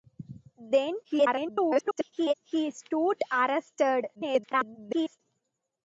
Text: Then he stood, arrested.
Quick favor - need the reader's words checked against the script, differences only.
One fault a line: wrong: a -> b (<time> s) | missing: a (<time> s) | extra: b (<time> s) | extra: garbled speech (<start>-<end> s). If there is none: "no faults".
extra: garbled speech (1.0-2.3 s)
extra: garbled speech (4.1-5.2 s)